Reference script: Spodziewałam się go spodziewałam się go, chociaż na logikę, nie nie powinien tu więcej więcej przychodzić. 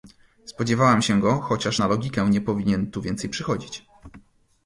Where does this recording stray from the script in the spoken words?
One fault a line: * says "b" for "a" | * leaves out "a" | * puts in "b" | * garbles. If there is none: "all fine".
* leaves out "spodziewałam się go"
* leaves out "nie"
* leaves out "więcej"